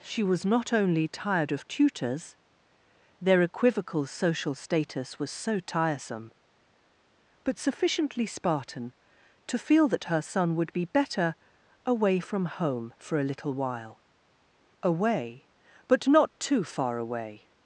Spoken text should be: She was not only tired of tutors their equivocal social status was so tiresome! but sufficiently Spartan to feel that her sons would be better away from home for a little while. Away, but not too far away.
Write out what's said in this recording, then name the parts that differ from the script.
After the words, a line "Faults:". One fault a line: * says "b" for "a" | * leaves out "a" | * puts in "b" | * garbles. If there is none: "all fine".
She was not only tired of tutors their equivocal social status was so tiresome! but sufficiently Spartan to feel that her son would be better away from home for a little while. Away, but not too far away.
Faults:
* says "son" for "sons"